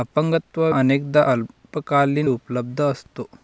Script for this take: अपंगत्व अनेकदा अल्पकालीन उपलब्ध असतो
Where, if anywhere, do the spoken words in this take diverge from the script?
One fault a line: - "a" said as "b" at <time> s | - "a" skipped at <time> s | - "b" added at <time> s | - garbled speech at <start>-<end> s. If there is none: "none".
none